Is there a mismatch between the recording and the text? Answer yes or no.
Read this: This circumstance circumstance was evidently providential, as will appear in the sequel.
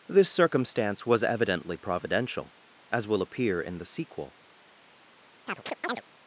yes